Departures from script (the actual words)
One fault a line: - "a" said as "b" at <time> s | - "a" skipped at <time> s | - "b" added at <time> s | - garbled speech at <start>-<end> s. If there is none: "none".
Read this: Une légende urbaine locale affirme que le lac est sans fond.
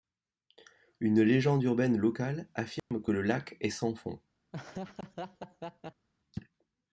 none